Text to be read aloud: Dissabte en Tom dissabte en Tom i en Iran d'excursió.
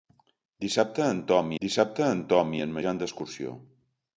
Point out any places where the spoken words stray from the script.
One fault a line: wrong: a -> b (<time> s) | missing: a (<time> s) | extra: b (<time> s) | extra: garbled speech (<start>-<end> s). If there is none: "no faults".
no faults